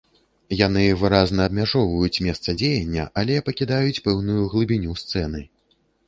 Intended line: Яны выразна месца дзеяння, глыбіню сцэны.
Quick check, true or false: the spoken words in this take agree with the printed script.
false